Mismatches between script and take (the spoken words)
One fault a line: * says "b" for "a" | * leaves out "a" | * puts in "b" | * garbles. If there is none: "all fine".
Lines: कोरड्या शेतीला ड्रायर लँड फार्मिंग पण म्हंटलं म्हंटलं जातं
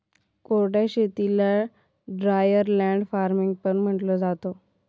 * leaves out "म्हंटलं"